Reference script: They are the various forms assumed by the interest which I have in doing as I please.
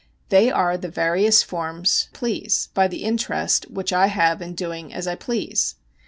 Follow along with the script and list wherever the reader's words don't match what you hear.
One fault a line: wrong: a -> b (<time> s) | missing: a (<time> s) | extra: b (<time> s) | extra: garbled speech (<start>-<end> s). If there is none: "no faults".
wrong: assumed -> please (2.1 s)